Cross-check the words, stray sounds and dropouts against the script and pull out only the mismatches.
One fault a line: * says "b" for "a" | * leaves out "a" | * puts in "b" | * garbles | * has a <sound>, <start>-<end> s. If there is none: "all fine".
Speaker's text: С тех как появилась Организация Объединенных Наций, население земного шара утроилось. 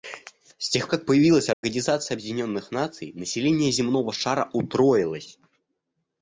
* has a dropout, 1.5-1.6 s